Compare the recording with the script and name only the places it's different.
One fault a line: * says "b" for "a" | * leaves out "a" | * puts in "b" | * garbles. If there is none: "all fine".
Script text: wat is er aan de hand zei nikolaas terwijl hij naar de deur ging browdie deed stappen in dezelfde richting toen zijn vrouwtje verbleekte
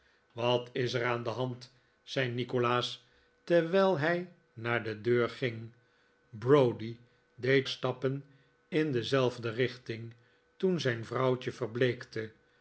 all fine